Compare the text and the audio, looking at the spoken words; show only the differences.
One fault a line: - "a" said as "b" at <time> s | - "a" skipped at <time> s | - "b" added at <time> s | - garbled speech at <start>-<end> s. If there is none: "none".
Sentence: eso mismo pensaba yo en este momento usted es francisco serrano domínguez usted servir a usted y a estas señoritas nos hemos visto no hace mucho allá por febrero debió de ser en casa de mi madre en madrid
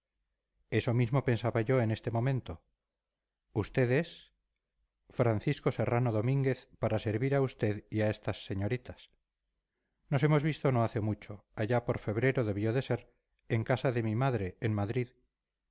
- "usted" said as "para" at 6.8 s